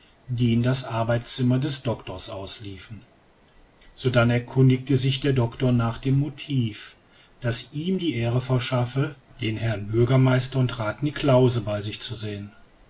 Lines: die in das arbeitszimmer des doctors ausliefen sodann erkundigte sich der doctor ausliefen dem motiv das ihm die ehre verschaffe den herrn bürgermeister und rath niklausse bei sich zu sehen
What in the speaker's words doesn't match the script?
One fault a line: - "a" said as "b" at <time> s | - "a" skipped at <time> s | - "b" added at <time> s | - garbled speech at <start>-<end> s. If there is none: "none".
- "ausliefen" said as "nach" at 5.7 s